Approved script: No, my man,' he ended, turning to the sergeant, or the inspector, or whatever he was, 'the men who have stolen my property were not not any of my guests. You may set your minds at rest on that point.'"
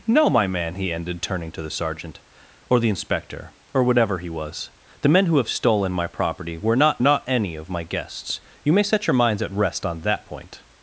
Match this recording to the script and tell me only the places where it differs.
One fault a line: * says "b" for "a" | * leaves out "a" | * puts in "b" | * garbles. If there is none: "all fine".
all fine